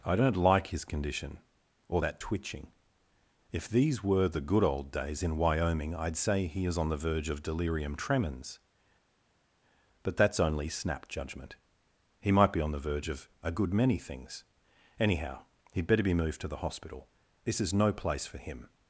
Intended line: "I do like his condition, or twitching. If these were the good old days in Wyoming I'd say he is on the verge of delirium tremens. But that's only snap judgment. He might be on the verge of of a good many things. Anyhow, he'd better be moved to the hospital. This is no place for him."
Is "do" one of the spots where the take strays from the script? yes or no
yes